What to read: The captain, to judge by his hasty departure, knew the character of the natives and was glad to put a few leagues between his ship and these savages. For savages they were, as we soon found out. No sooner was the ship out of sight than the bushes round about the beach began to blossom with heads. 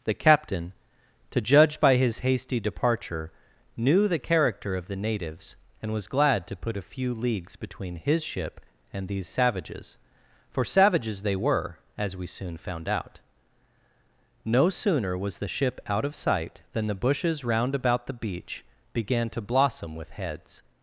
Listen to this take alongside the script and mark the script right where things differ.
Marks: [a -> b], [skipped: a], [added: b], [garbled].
The captain, to judge by his hasty departure, knew the character of the natives and was glad to put a few leagues between his ship and these savages. For savages they were, as we soon found out. No sooner was the ship out of sight than the bushes round about the beach began to blossom with heads.